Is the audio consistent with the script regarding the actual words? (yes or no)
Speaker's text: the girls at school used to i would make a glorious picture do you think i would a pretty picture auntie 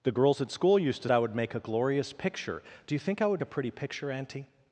yes